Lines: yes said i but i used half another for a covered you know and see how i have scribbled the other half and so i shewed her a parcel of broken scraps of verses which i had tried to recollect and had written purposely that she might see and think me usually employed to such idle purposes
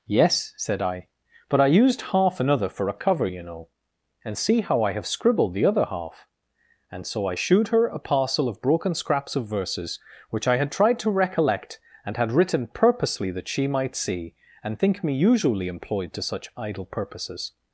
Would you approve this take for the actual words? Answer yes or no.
no